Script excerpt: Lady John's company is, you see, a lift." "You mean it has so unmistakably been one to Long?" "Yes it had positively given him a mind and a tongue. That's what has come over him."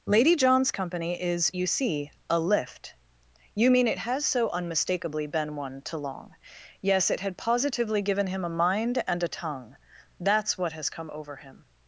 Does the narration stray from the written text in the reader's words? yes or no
no